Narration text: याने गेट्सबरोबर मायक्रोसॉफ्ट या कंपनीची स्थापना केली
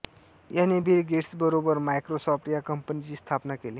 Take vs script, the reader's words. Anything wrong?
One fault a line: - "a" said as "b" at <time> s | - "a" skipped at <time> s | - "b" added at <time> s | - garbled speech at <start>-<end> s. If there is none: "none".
- "बिल" added at 0.8 s